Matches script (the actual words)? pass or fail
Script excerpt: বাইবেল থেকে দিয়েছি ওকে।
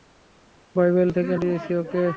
pass